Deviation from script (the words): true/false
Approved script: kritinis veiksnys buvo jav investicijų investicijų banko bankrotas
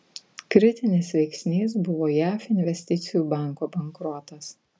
true